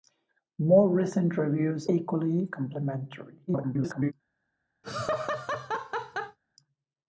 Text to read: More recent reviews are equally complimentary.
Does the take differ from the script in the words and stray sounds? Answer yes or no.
yes